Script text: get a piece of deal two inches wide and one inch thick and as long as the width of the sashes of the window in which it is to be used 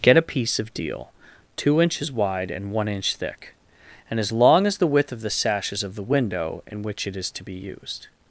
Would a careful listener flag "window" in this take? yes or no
no